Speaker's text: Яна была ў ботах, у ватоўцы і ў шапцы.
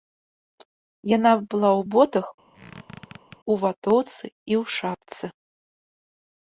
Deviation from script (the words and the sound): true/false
true